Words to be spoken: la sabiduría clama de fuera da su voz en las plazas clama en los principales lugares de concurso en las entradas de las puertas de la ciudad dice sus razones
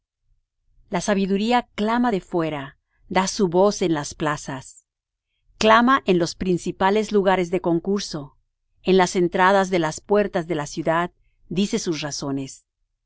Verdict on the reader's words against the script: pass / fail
pass